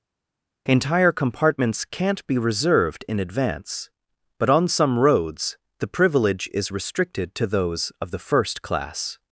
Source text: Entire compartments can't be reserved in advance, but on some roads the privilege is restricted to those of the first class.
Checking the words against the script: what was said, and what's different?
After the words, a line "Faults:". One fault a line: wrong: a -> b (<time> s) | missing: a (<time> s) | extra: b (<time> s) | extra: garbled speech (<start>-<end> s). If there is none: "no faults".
Entire compartments can't be reserved in advance, but on some roads the privilege is restricted to those of the first class.
Faults:
no faults